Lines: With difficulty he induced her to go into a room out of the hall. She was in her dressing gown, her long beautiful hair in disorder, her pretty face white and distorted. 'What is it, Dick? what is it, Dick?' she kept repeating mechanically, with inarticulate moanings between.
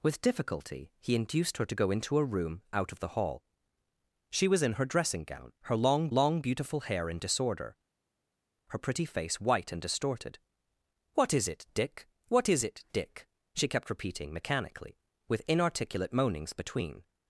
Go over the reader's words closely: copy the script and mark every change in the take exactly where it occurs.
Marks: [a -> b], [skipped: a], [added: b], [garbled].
With difficulty he induced her to go into a room out of the hall. She was in her dressing gown, her long [added: long] beautiful hair in disorder, her pretty face white and distorted. 'What is it, Dick? what is it, Dick?' she kept repeating mechanically, with inarticulate moanings between.